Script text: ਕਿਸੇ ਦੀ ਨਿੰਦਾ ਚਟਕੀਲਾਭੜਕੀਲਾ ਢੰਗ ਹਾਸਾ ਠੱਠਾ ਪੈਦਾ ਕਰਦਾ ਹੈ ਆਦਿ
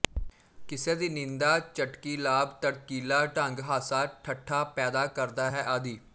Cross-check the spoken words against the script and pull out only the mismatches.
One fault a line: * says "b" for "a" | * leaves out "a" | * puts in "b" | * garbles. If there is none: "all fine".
all fine